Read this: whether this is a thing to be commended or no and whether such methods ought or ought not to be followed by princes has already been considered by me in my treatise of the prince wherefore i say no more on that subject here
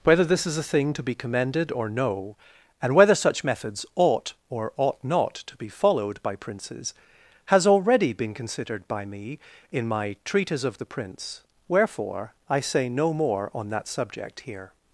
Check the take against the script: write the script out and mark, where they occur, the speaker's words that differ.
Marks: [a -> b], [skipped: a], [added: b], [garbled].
whether this is a thing to be commended or no and whether such methods ought or ought not to be followed by princes has already been considered by me in my treatise of the prince wherefore i say no more on that subject here